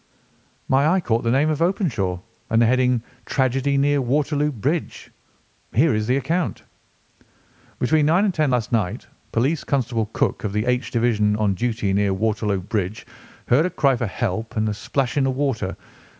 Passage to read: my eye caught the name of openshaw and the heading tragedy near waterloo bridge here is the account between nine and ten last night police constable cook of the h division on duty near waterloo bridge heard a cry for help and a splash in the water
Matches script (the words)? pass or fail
pass